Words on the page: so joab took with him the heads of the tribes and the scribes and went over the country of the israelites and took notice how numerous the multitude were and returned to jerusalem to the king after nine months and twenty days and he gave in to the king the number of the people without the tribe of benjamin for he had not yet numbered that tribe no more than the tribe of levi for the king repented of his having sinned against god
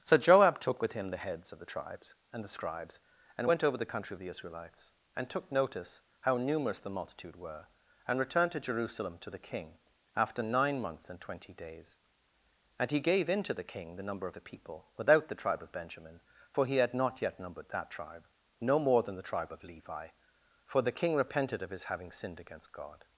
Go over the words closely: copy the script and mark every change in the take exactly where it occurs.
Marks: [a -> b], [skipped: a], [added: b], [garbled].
so joab took with him the heads of the tribes and the scribes and went over the country of the israelites and took notice how numerous the multitude were and returned to jerusalem to the king after nine months and twenty days and he gave in to the king the number of the people without the tribe of benjamin for he had not yet numbered that tribe no more than the tribe of levi for the king repented of his having sinned against god